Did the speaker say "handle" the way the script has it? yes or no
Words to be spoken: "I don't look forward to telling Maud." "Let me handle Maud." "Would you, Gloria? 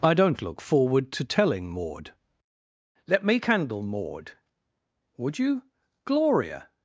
no